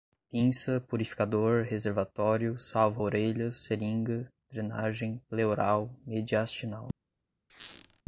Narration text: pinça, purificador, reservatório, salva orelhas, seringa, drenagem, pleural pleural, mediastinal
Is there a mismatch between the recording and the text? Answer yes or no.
yes